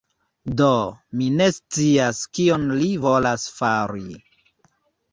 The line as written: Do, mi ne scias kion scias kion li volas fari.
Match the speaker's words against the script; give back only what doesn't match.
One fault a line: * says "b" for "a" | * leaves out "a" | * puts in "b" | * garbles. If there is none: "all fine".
* leaves out "scias kion"